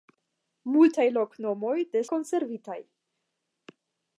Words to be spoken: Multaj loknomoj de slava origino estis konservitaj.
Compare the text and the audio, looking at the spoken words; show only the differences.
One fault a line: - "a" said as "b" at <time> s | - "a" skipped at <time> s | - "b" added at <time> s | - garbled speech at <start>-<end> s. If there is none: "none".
- "slava origino estis" skipped at 2.0 s